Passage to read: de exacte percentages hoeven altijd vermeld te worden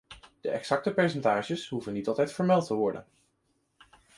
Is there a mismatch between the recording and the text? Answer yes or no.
yes